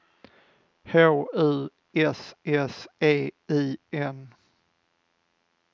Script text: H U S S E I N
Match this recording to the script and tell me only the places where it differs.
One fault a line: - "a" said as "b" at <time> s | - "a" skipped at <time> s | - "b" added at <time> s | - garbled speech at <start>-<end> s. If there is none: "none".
none